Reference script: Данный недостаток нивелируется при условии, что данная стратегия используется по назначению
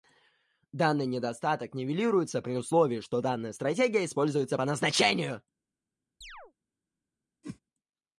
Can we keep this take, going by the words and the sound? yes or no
no